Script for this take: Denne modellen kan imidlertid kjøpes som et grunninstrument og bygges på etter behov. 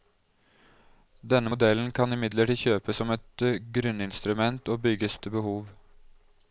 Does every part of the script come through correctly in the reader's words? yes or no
no